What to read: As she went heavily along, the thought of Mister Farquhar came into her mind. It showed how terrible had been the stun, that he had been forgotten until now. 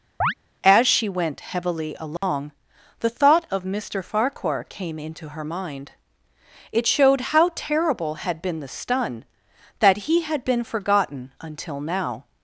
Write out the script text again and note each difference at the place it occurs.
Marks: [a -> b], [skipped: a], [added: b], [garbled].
As she went heavily along, the thought of Mister Farquhar came into her mind. It showed how terrible had been the stun, that he had been forgotten until now.